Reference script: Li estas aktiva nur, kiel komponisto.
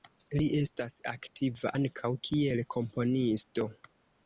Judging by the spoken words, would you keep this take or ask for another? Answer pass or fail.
fail